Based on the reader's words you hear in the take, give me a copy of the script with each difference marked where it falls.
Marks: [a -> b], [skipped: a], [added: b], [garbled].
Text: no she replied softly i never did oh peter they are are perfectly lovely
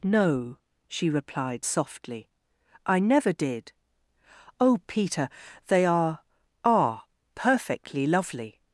no she replied softly i never did oh peter they are are perfectly lovely